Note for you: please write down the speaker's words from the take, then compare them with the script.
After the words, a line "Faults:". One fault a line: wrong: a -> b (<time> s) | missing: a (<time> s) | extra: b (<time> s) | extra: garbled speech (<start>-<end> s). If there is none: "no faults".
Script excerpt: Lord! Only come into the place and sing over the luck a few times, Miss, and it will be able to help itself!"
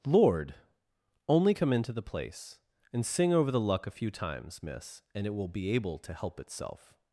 Lord! Only come into the place and sing over the luck a few times, Miss, and it will be able to help itself!"
Faults:
no faults